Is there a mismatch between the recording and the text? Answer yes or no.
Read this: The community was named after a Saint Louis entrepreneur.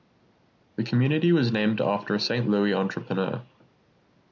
no